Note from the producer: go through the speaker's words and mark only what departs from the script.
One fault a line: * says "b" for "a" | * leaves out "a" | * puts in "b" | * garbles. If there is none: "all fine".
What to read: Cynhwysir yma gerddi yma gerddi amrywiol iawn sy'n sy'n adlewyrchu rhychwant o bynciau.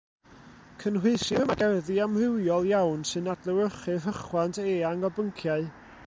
* leaves out "yma gerddi"
* leaves out "sy'n"
* puts in "eang"